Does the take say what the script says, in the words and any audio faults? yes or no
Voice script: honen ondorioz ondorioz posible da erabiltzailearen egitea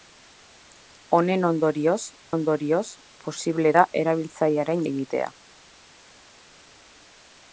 yes